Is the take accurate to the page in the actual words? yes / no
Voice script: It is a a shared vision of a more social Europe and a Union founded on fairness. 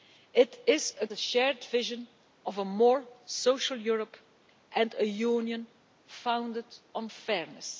yes